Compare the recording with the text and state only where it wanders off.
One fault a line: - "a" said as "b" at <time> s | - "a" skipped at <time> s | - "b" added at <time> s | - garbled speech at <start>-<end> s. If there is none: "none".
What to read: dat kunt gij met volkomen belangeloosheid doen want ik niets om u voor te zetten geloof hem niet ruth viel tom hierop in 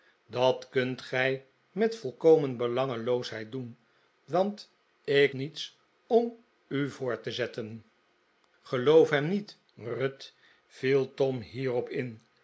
none